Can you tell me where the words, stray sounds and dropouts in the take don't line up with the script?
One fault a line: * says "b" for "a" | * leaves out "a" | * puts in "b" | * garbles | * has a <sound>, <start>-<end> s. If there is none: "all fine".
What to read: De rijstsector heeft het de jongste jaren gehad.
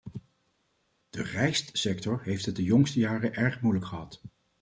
* puts in "erg moeilijk"